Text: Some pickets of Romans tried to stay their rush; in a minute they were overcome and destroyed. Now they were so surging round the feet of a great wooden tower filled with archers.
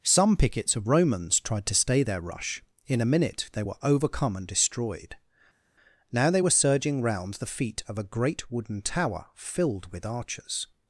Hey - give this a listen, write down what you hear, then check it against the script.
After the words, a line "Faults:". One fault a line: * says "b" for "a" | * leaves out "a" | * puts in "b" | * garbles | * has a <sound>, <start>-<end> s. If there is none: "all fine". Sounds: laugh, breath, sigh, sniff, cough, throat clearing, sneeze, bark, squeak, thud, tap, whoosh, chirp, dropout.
Some pickets of Romans tried to stay their rush; in a minute they were overcome and destroyed. Now they were surging round the feet of a great wooden tower filled with archers.
Faults:
* leaves out "so"